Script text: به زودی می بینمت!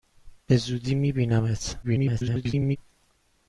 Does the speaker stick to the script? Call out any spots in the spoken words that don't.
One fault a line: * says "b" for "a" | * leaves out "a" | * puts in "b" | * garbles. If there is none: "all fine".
* garbles